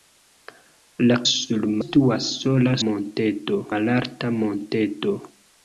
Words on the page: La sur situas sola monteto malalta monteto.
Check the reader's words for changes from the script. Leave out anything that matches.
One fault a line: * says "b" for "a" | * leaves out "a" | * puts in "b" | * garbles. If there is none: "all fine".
all fine